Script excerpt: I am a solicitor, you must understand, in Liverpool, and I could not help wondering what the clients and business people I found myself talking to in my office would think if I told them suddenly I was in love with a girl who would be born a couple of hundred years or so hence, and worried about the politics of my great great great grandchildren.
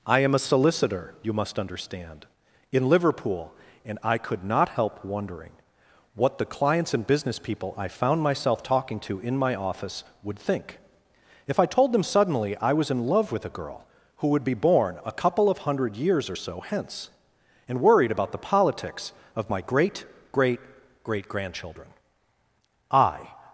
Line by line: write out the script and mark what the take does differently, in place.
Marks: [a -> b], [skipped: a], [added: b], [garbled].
I am a solicitor, you must understand, in Liverpool, and I could not help wondering what the clients and business people I found myself talking to in my office would think if I told them suddenly I was in love with a girl who would be born a couple of hundred years or so hence, and worried about the politics of my great great great grandchildren. [added: I]